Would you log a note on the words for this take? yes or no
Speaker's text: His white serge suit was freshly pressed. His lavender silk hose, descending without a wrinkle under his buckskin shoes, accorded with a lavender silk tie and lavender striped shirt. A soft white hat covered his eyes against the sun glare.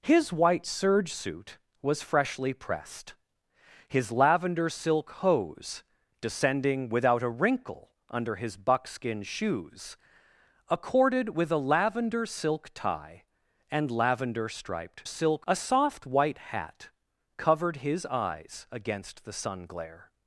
yes